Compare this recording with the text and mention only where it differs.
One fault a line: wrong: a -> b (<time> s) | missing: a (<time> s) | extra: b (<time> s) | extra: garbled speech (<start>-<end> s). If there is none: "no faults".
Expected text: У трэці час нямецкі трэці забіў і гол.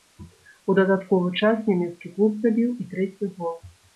wrong: трэці -> дадатковы (0.8 s)
wrong: трэці -> клуб (2.1 s)
extra: трэці (3.0 s)